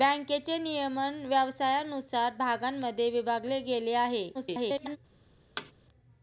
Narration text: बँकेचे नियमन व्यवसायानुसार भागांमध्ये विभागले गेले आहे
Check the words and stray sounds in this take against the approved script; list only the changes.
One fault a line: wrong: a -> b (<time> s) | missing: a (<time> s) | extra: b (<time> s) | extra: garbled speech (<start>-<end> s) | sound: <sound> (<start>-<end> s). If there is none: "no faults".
extra: garbled speech (4.3-5.0 s)
sound: thud (5.6-5.7 s)